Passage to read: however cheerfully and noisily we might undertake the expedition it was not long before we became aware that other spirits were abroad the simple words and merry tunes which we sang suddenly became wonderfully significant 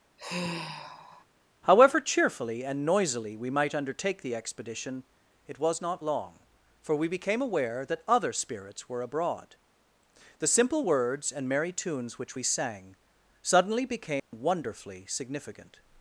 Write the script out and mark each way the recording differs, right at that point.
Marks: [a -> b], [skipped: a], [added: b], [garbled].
however cheerfully and noisily we might undertake the expedition it was not long [before -> for] we became aware that other spirits were abroad the simple words and merry tunes which we sang suddenly became wonderfully significant